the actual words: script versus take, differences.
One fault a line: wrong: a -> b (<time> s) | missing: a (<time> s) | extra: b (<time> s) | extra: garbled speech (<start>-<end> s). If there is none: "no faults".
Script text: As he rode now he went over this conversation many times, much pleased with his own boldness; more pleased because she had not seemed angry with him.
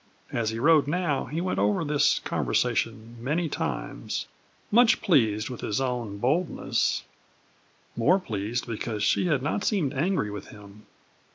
no faults